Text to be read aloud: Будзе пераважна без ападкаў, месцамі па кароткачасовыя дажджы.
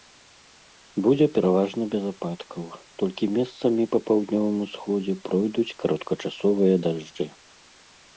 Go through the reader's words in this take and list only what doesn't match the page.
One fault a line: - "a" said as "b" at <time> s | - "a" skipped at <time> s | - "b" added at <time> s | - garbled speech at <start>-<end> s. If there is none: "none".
- "толькі" added at 3.0 s
- "паўднёвым усходзе пройдуць" added at 4.1 s